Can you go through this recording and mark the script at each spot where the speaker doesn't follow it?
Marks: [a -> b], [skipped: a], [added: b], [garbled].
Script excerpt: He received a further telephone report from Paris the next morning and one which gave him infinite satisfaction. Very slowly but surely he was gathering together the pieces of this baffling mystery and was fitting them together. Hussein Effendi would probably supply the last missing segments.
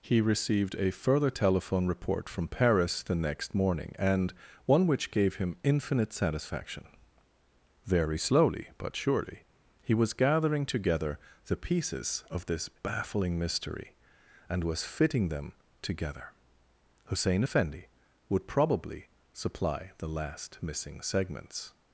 He received a further telephone report from Paris the next morning and one which gave him infinite satisfaction. Very slowly but surely he was gathering together the pieces of this baffling mystery and was fitting them together. Hussein Effendi would probably supply the last missing segments.